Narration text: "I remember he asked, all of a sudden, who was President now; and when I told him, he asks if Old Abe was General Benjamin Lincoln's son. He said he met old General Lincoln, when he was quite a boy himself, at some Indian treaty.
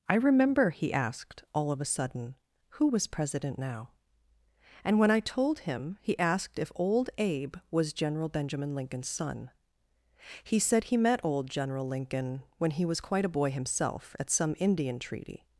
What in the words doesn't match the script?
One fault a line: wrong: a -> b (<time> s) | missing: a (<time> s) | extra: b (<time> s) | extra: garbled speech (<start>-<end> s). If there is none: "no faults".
wrong: asks -> asked (6.2 s)